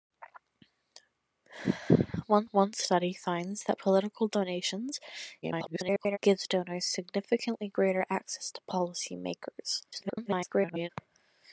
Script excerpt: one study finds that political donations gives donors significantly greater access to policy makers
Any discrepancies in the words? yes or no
yes